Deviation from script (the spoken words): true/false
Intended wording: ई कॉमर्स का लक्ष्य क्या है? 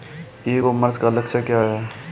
false